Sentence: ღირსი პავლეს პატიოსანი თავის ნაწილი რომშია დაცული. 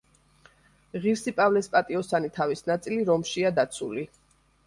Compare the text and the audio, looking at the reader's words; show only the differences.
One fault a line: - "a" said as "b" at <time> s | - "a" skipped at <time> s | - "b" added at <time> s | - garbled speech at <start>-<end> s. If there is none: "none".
none